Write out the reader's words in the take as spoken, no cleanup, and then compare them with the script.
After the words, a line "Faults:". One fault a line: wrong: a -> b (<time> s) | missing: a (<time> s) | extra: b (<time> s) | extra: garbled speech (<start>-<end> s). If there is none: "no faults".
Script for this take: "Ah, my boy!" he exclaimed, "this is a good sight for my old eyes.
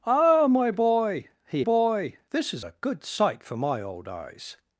"Ah, my boy!" he boy, "this is a good sight for my old eyes.
Faults:
wrong: exclaimed -> boy (1.6 s)